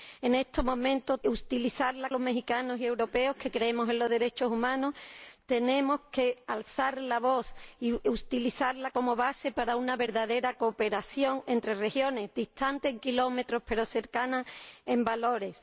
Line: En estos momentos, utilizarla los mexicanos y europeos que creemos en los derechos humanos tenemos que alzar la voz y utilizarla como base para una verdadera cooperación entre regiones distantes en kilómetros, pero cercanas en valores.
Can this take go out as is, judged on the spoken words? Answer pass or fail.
pass